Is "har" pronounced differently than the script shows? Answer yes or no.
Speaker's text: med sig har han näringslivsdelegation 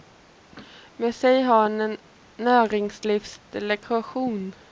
no